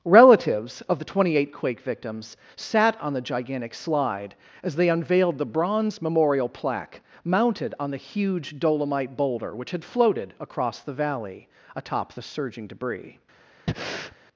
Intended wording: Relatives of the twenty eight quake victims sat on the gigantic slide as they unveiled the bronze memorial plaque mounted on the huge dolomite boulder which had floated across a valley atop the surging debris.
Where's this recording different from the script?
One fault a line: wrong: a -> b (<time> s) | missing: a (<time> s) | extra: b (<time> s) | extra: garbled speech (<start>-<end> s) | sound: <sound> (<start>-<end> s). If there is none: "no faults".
wrong: a -> the (10.8 s)
sound: breath (13.7-14.2 s)